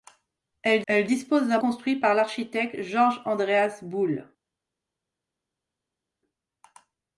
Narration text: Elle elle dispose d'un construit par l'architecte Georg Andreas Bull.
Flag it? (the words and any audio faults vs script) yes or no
no